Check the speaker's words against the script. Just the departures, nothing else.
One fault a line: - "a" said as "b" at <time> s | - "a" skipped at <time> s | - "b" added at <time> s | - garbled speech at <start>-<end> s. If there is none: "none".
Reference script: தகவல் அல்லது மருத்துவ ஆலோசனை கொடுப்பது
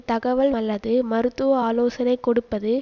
none